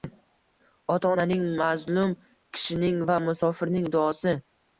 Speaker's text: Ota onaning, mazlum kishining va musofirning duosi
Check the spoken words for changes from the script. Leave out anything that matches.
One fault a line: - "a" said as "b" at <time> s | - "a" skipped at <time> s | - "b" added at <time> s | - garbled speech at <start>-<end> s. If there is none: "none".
none